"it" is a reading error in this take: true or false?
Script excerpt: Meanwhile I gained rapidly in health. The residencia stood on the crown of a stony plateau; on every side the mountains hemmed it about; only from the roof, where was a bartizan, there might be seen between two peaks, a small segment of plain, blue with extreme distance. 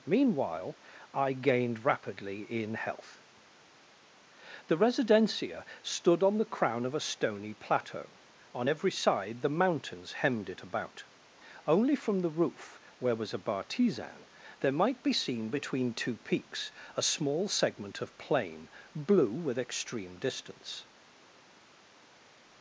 false